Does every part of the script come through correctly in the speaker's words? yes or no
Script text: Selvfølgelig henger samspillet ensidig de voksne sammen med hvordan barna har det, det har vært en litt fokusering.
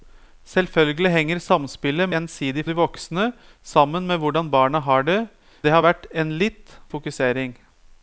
yes